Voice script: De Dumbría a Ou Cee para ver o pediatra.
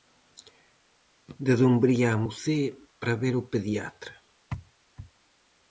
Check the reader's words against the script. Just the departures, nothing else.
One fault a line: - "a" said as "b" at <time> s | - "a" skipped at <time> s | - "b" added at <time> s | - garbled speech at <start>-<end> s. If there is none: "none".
none